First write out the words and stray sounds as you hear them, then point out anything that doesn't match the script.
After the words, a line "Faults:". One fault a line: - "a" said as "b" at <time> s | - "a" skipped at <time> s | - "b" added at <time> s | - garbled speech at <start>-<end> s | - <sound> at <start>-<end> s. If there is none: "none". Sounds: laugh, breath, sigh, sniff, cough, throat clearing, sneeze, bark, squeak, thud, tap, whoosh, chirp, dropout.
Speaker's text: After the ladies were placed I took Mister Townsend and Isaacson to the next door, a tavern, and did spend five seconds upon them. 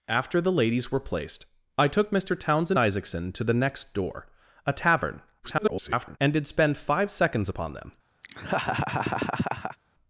After the ladies were placed I took Mister Townsend Isaacson to the next door, a tavern, [garbled] and did spend five seconds upon them.
Faults:
- "and" skipped at 2.8 s
- garbled speech at 5.4-6.2 s
- laugh at 8.2-9.8 s